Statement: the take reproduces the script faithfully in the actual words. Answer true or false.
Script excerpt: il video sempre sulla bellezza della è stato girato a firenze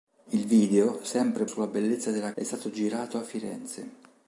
true